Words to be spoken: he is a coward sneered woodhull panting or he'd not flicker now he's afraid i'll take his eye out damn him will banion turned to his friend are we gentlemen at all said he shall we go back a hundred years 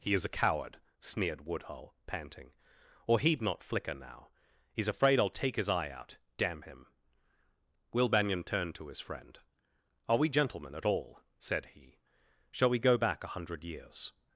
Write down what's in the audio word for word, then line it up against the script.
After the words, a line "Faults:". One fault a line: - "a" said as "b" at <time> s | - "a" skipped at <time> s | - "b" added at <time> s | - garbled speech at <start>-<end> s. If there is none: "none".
he is a coward sneered woodhull panting or he'd not flicker now he's afraid i'll take his eye out damn him will banion turned to his friend are we gentlemen at all said he shall we go back a hundred years
Faults:
none